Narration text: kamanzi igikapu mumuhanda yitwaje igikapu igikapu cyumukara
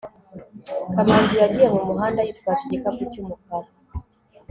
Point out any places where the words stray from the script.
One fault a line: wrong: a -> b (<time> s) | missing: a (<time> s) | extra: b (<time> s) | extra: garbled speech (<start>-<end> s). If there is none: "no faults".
wrong: igikapu -> yagiye (1.4 s)
missing: igikapu (3.0 s)